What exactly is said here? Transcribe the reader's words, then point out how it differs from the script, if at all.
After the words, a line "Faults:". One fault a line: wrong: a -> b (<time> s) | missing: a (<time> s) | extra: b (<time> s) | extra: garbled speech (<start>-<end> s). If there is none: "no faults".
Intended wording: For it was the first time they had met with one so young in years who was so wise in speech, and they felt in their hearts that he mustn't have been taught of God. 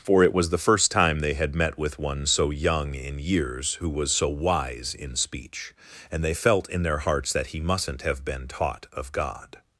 For it was the first time they had met with one so young in years who was so wise in speech, and they felt in their hearts that he mustn't have been taught of God.
Faults:
no faults